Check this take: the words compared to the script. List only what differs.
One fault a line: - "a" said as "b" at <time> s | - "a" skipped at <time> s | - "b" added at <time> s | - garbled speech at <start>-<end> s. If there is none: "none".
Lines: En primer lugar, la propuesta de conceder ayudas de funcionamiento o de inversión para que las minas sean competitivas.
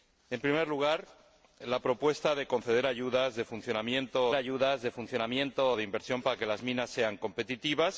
- "ayudas de funcionamiento" added at 4.3 s